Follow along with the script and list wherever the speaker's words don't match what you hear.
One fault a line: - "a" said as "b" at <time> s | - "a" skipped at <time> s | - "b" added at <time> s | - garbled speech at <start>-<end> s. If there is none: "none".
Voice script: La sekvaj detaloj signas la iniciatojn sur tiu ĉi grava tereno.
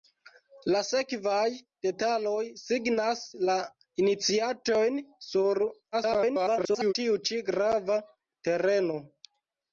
- garbled speech at 5.9-6.9 s